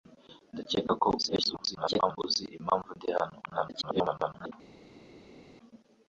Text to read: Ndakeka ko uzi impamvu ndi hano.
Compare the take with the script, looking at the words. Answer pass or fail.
fail